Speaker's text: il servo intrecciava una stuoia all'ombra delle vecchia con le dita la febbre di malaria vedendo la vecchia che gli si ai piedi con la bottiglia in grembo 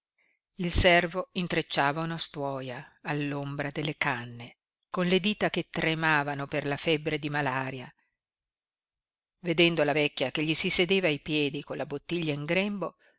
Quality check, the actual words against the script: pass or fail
fail